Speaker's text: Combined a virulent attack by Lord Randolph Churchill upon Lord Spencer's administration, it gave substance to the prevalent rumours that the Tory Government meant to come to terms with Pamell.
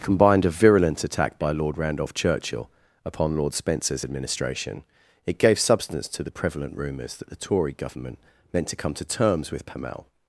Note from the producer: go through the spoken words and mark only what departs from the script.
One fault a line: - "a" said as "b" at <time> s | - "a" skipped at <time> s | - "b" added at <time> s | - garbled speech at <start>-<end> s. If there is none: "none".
none